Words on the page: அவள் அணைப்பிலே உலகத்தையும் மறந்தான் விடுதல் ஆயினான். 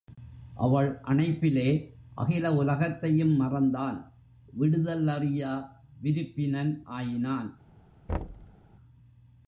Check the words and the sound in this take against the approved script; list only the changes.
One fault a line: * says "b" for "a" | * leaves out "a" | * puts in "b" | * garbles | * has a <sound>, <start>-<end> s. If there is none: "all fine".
* puts in "அகில"
* puts in "அறியா விருப்பினன்"
* has a thud, 8.1-8.6 s